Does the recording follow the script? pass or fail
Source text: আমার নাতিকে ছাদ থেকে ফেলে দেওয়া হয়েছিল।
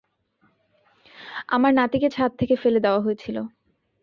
pass